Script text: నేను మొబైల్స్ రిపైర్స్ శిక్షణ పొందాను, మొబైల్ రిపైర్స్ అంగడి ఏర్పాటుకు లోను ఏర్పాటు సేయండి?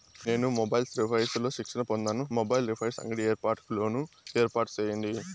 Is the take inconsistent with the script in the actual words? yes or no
yes